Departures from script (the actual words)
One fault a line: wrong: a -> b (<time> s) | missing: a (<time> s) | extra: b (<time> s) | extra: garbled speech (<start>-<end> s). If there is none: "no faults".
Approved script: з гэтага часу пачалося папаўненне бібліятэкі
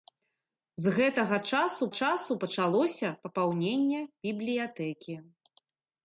extra: часу (2.0 s)